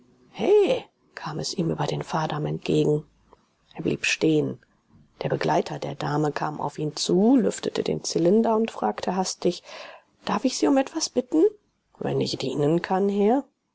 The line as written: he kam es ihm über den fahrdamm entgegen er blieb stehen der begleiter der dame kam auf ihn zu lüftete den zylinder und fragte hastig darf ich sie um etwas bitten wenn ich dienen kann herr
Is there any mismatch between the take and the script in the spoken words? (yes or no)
no